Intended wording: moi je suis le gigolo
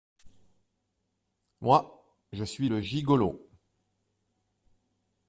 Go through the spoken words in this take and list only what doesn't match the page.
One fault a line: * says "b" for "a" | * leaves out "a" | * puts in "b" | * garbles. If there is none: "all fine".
all fine